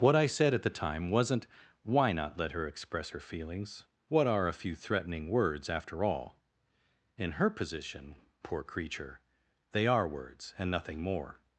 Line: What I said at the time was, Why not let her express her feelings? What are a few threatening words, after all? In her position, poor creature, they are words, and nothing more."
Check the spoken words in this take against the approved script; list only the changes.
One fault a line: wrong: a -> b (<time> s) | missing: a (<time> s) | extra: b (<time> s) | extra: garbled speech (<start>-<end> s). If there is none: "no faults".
wrong: was -> wasn't (1.1 s)